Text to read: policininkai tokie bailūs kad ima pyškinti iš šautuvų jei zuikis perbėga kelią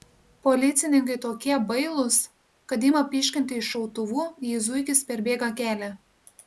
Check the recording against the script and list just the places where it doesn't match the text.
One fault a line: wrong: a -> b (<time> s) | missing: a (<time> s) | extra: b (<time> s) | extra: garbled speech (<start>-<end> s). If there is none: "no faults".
no faults